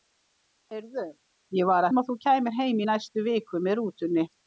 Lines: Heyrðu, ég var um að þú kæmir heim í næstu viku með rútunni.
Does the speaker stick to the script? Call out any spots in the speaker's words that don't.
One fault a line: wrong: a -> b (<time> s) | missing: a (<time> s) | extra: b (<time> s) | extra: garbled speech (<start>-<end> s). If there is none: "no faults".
no faults